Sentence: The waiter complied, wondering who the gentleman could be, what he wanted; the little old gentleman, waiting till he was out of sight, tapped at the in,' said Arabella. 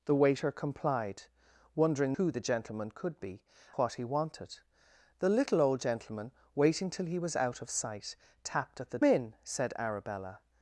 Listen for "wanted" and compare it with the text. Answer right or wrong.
right